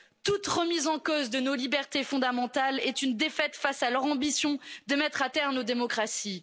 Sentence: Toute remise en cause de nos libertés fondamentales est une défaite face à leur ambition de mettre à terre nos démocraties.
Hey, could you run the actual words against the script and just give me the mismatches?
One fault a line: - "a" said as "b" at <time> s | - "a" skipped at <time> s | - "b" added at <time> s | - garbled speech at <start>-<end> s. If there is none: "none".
none